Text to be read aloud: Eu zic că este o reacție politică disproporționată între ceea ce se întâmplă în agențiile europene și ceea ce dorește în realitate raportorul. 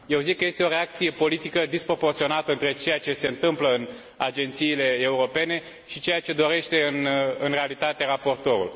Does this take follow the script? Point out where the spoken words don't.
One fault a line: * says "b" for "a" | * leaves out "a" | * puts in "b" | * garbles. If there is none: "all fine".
all fine